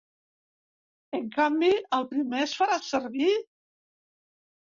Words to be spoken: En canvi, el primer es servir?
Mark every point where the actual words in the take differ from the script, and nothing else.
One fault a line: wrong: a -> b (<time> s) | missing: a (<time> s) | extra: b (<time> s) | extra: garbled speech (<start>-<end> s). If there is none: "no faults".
extra: farà (2.6 s)